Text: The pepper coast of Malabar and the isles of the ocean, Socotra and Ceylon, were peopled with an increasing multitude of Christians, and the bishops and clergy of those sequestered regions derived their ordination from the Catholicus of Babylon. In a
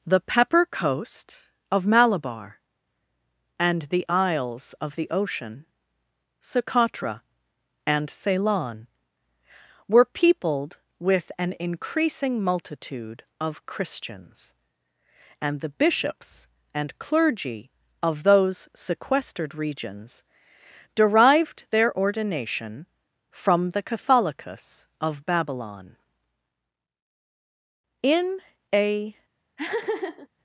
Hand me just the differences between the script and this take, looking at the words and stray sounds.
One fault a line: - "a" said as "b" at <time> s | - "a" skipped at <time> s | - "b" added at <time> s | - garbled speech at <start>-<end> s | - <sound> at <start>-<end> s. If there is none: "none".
- laugh at 29.6-30.3 s